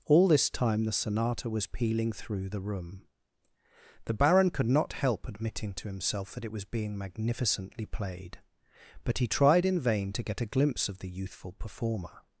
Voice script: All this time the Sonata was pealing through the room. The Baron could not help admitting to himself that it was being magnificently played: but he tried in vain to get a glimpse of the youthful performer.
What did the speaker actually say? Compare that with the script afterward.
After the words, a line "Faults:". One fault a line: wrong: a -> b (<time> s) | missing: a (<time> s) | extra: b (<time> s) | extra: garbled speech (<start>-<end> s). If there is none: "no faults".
All this time the Sonata was pealing through the room. The Baron could not help admitting to himself that it was being magnificently played: but he tried in vain to get a glimpse of the youthful performer.
Faults:
no faults